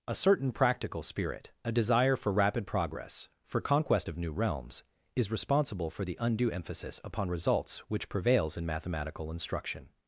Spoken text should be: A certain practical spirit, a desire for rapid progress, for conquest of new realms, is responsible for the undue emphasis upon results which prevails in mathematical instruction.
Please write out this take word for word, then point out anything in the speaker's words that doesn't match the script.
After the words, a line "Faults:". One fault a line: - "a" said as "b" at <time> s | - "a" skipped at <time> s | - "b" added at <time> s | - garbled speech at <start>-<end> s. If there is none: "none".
A certain practical spirit, a desire for rapid progress, for conquest of new realms, is responsible for the undue emphasis upon results which prevails in mathematical instruction.
Faults:
none